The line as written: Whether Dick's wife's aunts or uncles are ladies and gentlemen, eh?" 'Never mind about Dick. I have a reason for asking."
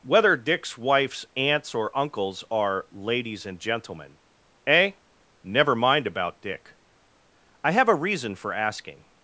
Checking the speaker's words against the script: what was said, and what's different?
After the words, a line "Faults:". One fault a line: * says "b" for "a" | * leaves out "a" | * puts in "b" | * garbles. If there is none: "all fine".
Whether Dick's wife's aunts or uncles are ladies and gentlemen, eh?" 'Never mind about Dick. I have a reason for asking."
Faults:
all fine